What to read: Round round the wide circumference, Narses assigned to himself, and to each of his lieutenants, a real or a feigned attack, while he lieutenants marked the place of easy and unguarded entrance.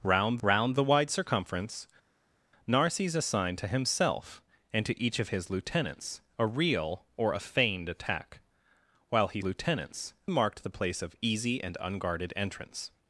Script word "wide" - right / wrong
right